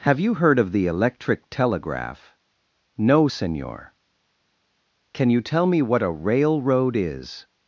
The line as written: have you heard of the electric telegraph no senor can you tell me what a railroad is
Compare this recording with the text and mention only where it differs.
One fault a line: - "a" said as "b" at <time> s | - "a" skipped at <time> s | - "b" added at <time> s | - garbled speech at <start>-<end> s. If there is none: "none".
none